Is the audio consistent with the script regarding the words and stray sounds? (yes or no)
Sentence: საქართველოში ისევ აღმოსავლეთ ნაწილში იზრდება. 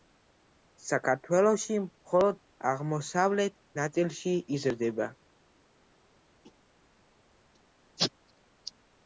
no